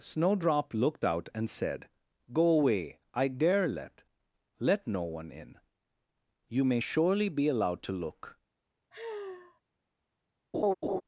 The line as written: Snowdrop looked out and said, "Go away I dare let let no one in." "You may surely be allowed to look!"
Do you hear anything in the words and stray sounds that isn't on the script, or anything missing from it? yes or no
yes